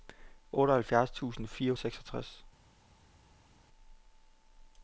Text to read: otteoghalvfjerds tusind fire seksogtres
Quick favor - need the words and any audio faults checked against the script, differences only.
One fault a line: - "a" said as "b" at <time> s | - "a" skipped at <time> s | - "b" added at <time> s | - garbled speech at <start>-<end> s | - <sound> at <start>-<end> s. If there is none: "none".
none